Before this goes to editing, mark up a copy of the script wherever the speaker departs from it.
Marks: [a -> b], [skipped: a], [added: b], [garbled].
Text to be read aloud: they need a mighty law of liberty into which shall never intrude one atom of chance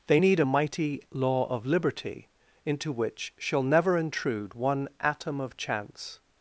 they need a mighty law of liberty into which shall never intrude one atom of chance